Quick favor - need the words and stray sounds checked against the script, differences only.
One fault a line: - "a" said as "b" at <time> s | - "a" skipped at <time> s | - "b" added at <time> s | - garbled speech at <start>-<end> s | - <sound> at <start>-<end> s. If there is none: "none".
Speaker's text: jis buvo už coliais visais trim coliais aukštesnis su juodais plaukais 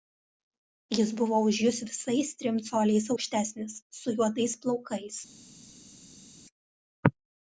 - "coliais" said as "jus" at 1.6 s